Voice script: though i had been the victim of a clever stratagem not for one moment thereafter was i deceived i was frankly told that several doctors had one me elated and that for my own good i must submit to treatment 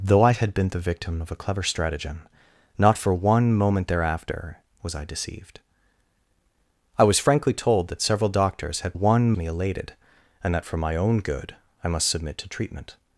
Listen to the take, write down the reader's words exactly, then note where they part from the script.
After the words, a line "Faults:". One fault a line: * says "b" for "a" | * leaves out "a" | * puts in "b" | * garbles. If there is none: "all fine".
though i had been the victim of a clever stratagem not for one moment thereafter was i deceived i was frankly told that several doctors had one me elated and that for my own good i must submit to treatment
Faults:
all fine